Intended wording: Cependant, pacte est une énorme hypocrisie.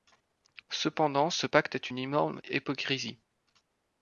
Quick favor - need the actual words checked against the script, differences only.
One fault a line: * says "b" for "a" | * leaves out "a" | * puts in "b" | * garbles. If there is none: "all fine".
* puts in "ce"